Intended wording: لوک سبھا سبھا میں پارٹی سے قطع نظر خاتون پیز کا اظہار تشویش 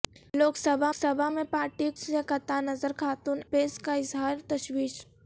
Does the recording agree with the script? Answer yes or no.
yes